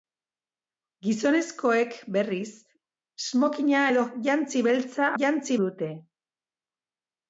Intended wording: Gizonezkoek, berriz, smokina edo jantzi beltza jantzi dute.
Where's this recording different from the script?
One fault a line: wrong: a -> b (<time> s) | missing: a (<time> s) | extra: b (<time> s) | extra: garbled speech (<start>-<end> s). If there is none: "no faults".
no faults